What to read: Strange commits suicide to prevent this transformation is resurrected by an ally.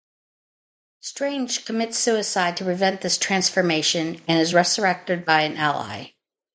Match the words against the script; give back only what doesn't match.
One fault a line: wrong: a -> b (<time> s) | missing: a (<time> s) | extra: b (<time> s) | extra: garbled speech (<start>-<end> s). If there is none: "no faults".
extra: and (4.3 s)